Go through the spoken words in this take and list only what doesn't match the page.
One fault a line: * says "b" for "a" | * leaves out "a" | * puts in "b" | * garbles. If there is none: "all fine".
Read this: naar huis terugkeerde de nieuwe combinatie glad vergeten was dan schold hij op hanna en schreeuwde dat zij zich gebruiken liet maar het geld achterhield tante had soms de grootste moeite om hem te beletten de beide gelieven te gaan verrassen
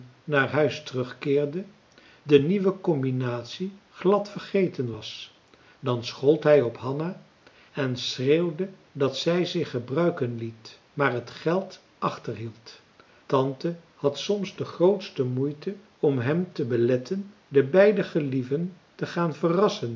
all fine